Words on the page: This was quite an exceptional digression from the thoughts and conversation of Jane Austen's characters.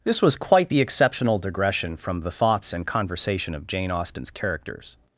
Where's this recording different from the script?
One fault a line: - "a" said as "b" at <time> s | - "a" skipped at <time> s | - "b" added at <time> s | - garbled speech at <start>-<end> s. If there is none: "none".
- "an" said as "the" at 0.7 s